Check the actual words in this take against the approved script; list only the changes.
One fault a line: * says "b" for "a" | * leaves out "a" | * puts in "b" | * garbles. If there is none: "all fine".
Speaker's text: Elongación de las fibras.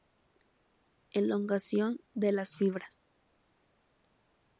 all fine